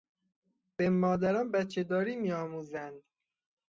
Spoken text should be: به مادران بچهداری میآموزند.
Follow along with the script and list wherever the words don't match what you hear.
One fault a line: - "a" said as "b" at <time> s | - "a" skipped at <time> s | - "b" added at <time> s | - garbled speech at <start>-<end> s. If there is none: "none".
none